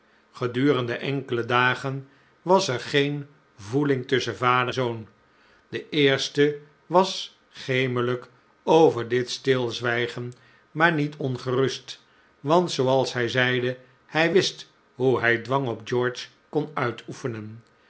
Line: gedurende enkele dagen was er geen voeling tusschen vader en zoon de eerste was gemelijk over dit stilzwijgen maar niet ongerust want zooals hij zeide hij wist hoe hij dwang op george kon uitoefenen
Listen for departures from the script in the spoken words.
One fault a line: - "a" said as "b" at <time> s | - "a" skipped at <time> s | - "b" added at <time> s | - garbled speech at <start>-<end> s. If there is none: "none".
- "en" skipped at 4.8 s